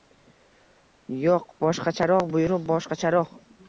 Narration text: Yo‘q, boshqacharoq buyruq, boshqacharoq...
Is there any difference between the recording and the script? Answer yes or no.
no